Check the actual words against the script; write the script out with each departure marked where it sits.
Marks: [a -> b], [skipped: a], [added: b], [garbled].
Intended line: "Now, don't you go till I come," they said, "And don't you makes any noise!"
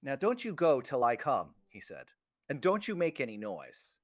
"Now, don't you go till I come," [they -> he] said, "And don't you [makes -> make] any noise!"